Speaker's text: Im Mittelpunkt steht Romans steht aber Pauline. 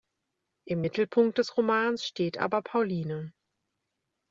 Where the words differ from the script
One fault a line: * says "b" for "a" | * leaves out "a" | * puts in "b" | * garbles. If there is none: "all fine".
* says "des" for "steht"